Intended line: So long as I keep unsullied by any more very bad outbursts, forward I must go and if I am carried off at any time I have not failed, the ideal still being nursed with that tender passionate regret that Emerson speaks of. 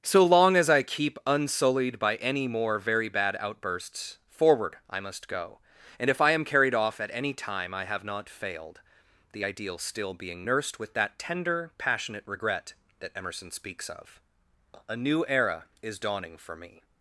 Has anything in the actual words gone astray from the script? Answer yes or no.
yes